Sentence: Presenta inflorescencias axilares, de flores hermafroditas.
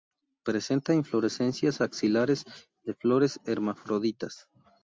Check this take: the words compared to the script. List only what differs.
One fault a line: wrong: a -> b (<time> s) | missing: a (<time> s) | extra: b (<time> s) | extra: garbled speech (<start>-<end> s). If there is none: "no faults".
no faults